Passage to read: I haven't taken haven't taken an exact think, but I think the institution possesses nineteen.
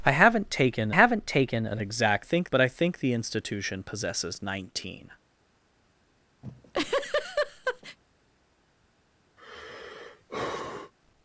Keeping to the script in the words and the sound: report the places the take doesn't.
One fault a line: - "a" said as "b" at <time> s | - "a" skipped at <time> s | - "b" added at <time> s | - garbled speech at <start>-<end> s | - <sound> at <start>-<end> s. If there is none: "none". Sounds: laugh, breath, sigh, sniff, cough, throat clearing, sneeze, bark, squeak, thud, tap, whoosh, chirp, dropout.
- laugh at 6.4-8.0 s
- sigh at 9.4-10.9 s